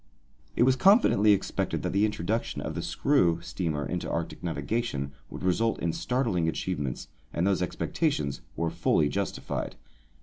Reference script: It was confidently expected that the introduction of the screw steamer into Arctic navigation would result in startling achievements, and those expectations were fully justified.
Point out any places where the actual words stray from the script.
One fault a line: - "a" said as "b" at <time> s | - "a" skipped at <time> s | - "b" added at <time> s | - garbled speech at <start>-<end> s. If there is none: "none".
none